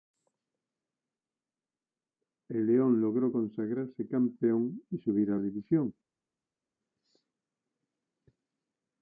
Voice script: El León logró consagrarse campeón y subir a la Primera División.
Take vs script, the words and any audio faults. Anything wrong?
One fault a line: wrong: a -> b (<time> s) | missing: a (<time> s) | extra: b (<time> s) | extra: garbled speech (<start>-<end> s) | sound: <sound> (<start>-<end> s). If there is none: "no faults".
missing: la Primera (5.4 s)